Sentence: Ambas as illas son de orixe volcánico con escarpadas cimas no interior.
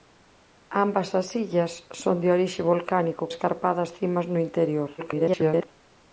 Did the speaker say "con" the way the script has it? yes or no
no